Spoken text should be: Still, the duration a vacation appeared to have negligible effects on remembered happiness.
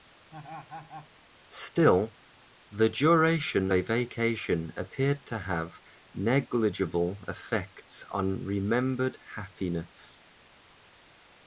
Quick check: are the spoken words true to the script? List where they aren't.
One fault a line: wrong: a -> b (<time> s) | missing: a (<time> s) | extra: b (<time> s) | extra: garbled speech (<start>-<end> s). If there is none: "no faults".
no faults